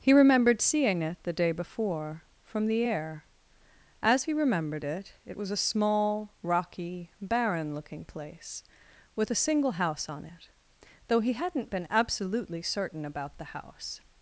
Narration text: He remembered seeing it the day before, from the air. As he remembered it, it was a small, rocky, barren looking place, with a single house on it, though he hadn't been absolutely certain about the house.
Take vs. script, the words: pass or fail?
pass